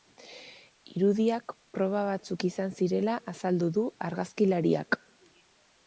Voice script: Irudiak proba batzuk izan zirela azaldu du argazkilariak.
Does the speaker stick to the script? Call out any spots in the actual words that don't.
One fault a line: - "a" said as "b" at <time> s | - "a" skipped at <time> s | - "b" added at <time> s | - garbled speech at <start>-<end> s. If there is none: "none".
none